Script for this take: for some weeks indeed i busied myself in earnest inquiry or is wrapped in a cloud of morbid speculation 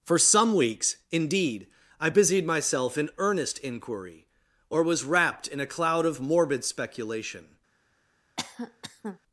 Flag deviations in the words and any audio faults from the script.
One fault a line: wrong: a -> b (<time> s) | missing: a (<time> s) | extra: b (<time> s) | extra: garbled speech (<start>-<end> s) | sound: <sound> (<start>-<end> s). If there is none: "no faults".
wrong: is -> was (4.8 s)
sound: cough (8.4-9.2 s)